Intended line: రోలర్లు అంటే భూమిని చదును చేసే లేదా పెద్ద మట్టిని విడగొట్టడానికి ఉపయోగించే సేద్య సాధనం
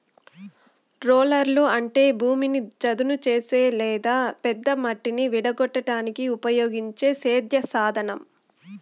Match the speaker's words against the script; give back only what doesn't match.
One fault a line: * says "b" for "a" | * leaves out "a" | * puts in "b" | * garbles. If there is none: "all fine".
all fine